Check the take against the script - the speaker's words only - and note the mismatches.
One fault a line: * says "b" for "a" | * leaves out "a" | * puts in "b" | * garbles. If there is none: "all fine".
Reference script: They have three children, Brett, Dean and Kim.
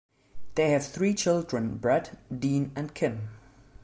all fine